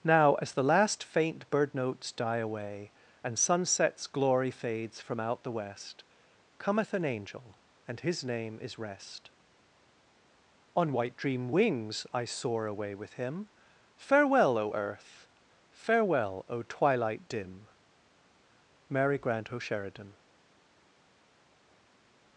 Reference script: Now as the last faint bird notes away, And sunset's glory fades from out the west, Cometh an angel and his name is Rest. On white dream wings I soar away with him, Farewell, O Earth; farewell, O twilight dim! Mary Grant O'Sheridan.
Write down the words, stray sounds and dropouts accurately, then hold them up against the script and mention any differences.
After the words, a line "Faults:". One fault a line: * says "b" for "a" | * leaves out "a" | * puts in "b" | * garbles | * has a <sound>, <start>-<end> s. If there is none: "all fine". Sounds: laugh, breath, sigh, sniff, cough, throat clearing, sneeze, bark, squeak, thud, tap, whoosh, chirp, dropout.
Now as the last faint bird notes die away, And sunset's glory fades from out the west, Cometh an angel and his name is Rest. On white dream wings I soar away with him, Farewell, O Earth; farewell, O twilight dim! Mary Grant O'Sheridan.
Faults:
* puts in "die"